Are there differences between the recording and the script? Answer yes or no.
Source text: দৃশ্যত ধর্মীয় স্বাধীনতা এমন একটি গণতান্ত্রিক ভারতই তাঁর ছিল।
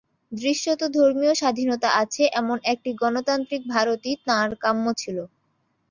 yes